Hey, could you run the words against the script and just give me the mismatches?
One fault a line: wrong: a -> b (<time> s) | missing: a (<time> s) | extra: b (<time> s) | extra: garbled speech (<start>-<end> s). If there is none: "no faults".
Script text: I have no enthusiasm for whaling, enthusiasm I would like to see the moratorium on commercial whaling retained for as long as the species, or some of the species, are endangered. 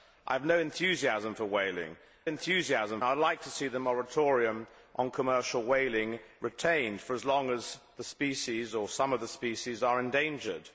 no faults